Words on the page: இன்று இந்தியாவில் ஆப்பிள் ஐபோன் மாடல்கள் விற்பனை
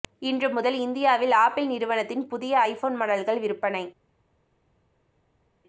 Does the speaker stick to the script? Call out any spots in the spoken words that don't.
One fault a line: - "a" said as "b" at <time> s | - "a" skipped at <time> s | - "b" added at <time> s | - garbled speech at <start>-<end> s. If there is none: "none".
- "முதல்" added at 0.5 s
- "நிறுவனத்தின் புதிய" added at 1.7 s